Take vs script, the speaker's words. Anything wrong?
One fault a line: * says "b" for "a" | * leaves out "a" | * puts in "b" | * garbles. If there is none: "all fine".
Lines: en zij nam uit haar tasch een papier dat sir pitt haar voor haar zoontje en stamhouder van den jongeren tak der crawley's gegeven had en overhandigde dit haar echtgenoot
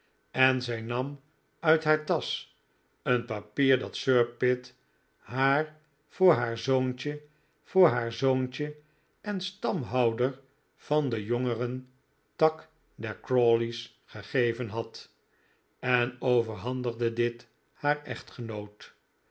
* puts in "voor haar zoontje"